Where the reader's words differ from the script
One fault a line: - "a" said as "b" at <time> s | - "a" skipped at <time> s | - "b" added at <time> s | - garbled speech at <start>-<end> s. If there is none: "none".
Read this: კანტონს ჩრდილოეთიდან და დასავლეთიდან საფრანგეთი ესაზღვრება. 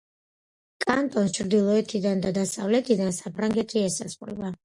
none